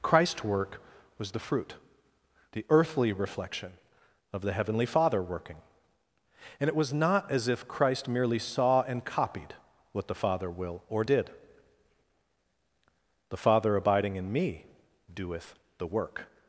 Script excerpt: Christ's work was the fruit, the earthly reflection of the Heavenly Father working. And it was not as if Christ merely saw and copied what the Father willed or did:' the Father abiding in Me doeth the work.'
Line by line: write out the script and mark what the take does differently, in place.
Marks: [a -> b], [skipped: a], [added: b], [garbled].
Christ's work was the fruit, the earthly reflection of the Heavenly Father working. And it was not as if Christ merely saw and copied what the Father [willed -> will] or did:' the Father abiding in Me doeth the work.'